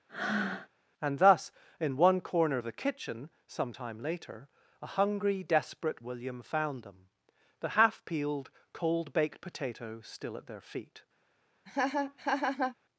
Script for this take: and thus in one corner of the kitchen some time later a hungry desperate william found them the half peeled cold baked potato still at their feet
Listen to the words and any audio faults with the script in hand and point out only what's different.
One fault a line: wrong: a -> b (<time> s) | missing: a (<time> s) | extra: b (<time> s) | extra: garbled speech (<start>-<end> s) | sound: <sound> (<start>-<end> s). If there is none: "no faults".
sound: breath (0.1-0.7 s)
sound: laugh (11.7-12.8 s)